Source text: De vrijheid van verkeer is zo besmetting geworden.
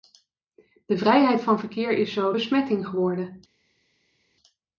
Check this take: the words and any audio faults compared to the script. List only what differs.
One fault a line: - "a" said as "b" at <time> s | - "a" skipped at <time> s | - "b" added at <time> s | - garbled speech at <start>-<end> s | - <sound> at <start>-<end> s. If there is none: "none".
none